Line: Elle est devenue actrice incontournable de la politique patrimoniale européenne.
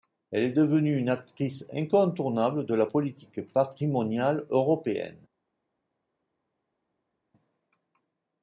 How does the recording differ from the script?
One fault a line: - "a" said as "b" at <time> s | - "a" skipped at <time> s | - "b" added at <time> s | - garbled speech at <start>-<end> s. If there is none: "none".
- "une" added at 1.0 s